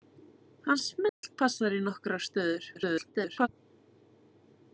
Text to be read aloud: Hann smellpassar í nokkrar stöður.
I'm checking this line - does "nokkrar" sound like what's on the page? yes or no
yes